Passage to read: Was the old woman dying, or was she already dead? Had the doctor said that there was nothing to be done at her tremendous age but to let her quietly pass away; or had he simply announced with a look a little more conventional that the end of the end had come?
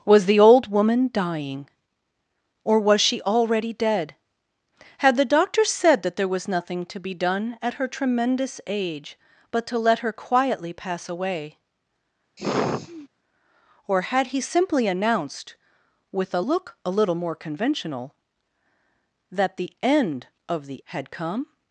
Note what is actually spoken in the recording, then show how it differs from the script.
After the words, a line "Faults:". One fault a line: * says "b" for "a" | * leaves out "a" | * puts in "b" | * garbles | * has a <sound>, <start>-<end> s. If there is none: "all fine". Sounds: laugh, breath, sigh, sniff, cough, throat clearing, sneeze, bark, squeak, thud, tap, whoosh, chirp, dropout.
Was the old woman dying, or was she already dead? Had the doctor said that there was nothing to be done at her tremendous age but to let her quietly pass away; or had he simply announced with a look a little more conventional that the end of the had come?
Faults:
* has a sigh, 12.4-13.1 s
* leaves out "end"